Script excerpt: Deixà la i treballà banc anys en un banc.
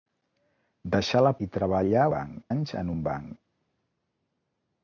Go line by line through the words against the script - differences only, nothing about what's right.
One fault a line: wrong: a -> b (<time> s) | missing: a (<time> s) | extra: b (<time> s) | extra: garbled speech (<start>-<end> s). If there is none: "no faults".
no faults